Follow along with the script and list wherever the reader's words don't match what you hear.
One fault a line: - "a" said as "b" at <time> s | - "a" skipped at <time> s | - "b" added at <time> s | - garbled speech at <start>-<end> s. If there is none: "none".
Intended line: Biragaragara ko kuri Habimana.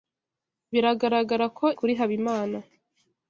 none